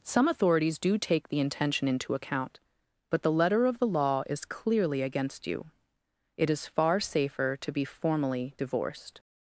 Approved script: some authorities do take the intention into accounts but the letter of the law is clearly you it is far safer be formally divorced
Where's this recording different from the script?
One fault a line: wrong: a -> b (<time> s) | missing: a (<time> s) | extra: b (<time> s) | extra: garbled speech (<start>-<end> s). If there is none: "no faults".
wrong: accounts -> account (2.1 s)
extra: against (5.0 s)
extra: to (7.6 s)